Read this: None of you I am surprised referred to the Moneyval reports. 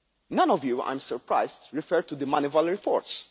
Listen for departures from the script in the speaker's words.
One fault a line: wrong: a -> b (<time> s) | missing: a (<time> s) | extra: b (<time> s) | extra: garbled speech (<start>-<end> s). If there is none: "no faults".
no faults